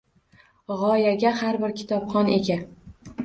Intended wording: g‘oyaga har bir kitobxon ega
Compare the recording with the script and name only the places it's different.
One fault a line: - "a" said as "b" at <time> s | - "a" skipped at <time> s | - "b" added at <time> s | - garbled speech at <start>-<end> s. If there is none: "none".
none